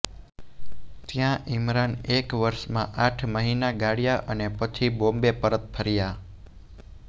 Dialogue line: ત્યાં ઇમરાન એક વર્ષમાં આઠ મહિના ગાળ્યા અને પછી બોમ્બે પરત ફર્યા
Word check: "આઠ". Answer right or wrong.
right